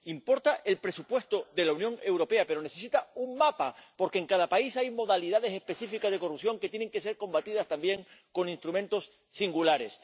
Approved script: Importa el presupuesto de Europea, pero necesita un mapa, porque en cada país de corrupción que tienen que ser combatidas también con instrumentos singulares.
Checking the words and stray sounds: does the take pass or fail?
fail